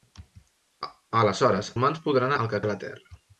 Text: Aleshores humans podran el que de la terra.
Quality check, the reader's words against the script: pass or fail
pass